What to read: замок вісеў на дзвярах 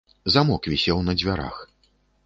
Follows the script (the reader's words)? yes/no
yes